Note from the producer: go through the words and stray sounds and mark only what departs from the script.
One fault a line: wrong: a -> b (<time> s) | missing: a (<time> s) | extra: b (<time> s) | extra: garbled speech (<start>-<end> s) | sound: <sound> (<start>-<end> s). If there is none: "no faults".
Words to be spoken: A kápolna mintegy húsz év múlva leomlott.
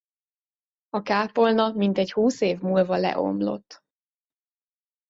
no faults